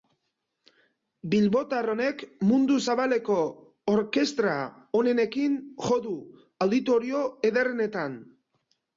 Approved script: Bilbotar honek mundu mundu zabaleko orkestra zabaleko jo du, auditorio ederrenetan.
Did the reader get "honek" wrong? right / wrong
right